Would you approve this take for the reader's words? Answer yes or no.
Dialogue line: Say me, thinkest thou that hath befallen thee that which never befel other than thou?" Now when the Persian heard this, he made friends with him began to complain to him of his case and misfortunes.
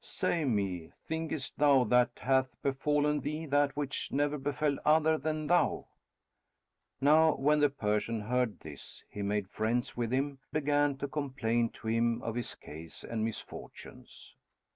yes